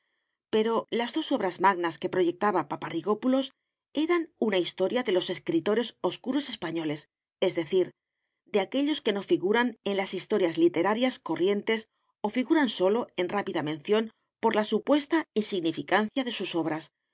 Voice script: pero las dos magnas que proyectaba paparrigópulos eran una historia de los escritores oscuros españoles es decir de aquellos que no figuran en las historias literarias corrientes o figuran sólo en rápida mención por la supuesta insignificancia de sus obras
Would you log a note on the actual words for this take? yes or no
yes